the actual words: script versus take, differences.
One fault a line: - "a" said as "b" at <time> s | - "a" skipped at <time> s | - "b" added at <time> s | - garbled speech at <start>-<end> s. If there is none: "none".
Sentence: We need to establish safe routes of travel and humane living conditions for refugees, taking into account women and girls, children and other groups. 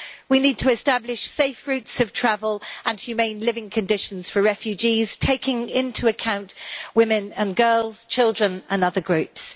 none